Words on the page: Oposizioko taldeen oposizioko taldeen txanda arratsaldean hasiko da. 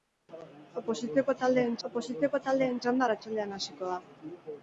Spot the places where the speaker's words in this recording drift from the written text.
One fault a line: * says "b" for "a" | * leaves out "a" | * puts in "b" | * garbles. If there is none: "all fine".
all fine